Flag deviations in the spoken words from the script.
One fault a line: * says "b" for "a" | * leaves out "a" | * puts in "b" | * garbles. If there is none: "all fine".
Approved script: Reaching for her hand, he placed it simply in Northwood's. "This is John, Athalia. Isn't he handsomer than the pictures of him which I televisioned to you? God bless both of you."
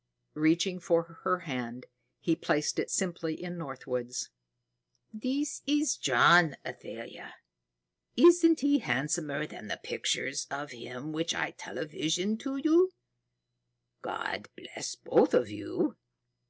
all fine